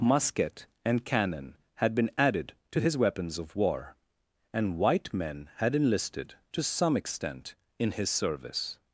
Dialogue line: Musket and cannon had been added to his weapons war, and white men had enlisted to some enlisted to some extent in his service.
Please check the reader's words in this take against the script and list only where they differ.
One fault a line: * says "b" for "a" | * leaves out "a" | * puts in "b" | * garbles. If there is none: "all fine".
* puts in "of"
* leaves out "enlisted to some"